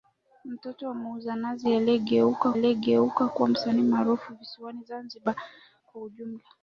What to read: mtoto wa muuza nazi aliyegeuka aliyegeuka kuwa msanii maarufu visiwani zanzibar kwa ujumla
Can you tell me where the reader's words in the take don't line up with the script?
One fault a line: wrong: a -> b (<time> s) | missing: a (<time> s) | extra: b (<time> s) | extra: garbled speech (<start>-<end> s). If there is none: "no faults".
no faults